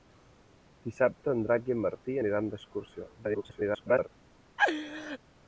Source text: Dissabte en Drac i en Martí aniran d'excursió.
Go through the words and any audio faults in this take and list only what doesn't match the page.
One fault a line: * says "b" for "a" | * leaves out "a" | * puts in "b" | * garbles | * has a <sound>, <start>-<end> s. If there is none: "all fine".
* garbles
* has a laugh, 4.6-5.2 s